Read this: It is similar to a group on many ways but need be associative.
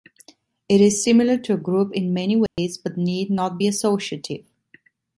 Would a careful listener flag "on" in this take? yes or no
yes